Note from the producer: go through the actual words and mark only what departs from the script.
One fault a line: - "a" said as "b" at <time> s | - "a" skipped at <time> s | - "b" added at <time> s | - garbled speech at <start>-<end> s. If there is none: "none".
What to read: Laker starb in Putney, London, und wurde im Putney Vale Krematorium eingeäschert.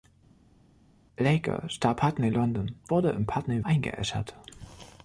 - "in" skipped at 2.0 s
- "und" skipped at 2.7 s
- "Vale Krematorium" skipped at 3.6 s